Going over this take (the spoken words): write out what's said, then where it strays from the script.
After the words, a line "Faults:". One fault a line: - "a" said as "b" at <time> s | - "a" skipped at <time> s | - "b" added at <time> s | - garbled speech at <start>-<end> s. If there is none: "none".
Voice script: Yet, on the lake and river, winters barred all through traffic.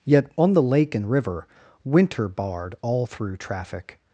Yet, on the lake and river, winter barred all through traffic.
Faults:
- "winters" said as "winter" at 1.8 s